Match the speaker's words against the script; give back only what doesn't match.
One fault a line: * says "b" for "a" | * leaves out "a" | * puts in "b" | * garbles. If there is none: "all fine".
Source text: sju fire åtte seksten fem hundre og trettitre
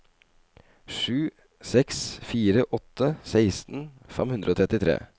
* puts in "seks"